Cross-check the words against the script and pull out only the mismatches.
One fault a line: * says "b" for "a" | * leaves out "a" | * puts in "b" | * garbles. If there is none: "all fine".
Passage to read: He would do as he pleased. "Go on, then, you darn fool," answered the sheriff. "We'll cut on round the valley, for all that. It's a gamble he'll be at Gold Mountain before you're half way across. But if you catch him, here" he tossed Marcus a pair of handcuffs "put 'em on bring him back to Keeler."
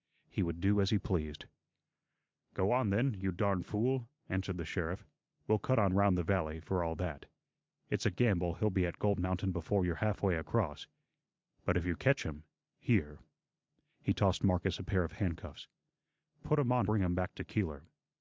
all fine